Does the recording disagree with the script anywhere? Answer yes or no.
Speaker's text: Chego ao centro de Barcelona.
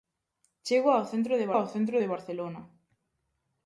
yes